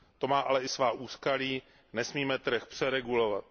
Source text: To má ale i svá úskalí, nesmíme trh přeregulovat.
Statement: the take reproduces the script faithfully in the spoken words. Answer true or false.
true